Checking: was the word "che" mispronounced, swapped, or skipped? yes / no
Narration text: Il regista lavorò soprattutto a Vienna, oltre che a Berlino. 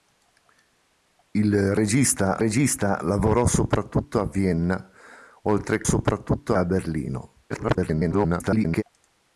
yes